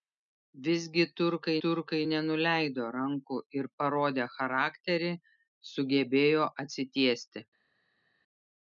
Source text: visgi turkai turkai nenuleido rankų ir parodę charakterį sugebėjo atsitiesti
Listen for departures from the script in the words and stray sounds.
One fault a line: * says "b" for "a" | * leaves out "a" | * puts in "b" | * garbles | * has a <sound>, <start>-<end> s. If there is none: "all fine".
all fine